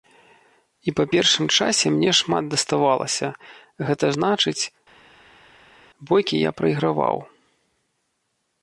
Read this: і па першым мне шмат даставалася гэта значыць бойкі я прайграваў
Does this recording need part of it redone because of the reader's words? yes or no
yes